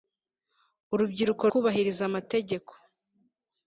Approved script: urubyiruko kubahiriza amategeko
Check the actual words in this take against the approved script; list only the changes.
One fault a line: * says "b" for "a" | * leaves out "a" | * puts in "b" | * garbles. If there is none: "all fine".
all fine